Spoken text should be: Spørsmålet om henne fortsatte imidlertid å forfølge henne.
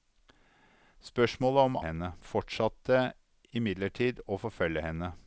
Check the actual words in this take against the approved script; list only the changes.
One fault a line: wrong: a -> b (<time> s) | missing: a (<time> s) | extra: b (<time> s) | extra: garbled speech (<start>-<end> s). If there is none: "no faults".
no faults